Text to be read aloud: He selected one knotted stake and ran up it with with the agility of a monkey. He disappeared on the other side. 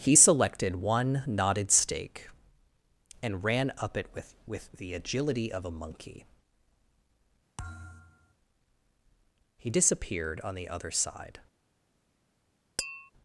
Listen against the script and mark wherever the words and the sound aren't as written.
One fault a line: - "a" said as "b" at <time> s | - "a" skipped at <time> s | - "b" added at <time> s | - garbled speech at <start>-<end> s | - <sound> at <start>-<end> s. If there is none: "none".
- thud at 7.6-8.3 s
- tap at 12.8-13.1 s